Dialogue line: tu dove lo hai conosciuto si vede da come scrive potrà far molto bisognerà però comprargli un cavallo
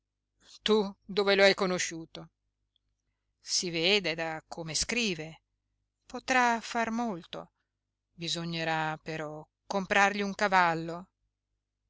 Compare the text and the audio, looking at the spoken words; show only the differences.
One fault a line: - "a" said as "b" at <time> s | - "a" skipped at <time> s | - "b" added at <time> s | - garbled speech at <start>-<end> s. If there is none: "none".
none